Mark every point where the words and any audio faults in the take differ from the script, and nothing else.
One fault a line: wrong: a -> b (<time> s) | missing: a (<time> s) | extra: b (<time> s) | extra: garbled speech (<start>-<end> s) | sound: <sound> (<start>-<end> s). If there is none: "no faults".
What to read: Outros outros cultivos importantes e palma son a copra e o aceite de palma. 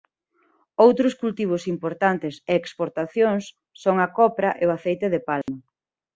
missing: outros (1.1 s)
wrong: palma -> exportacións (2.6 s)
sound: dropout (5.4-5.5 s)